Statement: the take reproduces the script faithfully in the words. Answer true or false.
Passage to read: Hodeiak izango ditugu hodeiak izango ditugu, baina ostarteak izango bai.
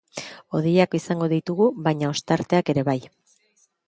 false